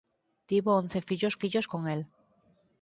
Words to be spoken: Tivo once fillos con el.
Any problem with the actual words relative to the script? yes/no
yes